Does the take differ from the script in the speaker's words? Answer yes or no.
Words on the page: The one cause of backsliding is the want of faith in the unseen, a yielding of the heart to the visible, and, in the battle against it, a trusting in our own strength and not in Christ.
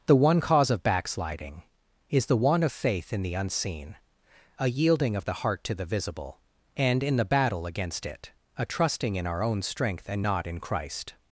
no